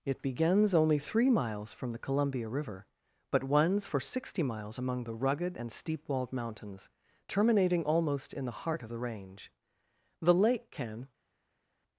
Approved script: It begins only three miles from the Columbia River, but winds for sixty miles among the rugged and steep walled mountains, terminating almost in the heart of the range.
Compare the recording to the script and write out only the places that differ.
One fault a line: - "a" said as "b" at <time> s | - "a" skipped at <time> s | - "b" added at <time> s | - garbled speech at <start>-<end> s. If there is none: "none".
- "The lake can" added at 10.2 s